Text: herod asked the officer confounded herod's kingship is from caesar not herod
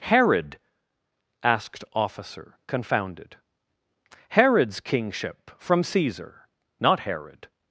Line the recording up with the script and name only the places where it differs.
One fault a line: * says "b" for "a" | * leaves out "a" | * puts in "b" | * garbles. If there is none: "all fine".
* leaves out "the"
* leaves out "is"